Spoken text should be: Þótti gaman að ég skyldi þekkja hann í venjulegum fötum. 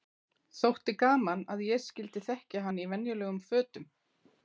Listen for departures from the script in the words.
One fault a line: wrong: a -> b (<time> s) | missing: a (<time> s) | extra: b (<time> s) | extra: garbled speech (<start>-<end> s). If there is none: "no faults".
no faults